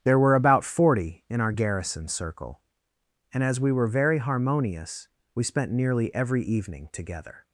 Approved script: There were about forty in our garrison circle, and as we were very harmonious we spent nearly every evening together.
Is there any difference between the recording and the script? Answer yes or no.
no